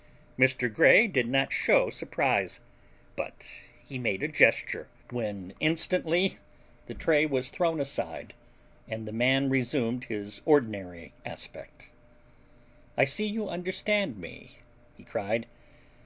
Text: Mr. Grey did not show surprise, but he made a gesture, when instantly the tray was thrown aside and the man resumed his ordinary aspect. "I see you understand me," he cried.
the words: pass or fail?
pass